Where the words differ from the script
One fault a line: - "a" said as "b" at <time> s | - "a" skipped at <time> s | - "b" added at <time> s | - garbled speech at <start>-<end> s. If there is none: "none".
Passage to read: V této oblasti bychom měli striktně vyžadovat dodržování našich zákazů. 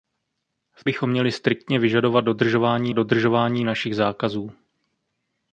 - "této oblasti" skipped at 0.8 s
- "dodržování" added at 2.9 s